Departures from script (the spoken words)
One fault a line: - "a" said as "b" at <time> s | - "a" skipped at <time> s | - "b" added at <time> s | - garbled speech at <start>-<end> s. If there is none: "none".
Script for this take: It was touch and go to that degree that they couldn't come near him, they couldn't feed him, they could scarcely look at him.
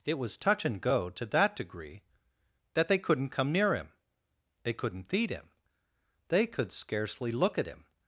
none